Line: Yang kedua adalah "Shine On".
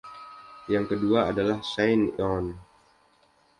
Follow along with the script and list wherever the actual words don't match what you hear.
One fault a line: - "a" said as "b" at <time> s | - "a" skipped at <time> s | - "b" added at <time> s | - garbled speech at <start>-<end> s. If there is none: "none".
none